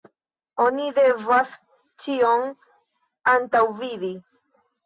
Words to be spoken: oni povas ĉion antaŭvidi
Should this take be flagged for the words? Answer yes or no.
yes